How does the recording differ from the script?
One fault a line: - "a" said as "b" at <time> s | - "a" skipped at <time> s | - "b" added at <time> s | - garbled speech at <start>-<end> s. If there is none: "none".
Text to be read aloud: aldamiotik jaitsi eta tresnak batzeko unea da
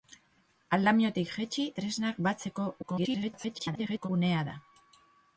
- "eta" skipped at 1.7 s
- garbled speech at 2.8-4.1 s